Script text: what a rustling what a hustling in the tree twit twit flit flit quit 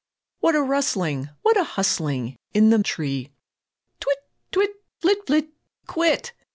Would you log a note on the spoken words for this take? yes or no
no